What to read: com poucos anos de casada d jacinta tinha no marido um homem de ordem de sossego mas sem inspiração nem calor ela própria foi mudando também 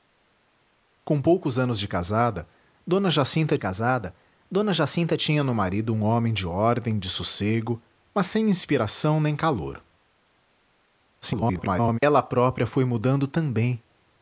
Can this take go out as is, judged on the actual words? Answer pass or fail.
fail